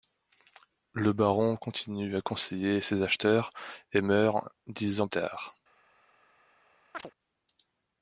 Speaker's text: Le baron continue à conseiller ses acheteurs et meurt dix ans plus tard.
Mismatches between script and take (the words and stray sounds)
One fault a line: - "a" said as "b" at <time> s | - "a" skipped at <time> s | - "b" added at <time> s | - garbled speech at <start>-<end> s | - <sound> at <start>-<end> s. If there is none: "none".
- "plus" skipped at 5.1 s
- chirp at 6.9-7.1 s